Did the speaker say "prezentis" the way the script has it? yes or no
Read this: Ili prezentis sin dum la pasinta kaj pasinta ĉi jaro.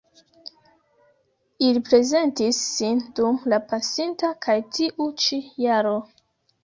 yes